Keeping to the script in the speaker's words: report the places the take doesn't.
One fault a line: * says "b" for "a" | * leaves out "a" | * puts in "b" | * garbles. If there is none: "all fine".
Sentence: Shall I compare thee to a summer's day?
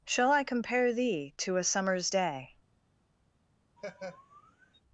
all fine